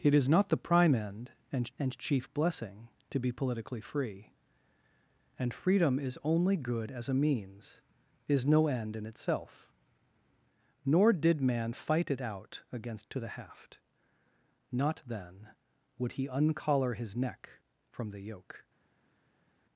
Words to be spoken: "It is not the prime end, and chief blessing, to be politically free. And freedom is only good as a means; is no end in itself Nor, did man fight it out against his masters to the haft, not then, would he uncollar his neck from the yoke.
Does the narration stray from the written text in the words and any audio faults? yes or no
yes